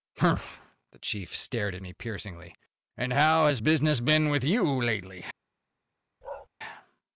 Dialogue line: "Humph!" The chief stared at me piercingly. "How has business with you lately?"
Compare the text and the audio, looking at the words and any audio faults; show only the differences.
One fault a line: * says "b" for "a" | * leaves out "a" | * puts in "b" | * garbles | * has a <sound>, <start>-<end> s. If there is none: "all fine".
* puts in "And"
* puts in "been"
* has a bark, 6.2-6.5 s